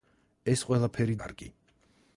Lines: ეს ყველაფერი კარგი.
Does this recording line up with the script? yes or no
yes